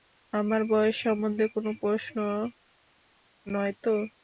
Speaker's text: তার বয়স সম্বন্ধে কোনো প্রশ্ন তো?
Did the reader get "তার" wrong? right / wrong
wrong